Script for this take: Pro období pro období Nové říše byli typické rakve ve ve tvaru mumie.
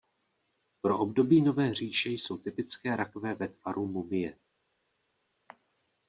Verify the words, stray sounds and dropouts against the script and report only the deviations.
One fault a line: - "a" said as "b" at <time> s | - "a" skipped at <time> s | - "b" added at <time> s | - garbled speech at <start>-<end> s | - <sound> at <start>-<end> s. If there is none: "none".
- "pro období" skipped at 1.4 s
- "byli" said as "jsou" at 2.1 s
- "ve" skipped at 3.5 s